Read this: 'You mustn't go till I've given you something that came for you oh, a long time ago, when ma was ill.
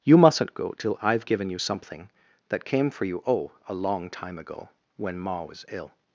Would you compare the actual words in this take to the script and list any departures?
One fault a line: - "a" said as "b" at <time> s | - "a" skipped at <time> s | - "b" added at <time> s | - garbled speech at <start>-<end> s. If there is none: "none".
none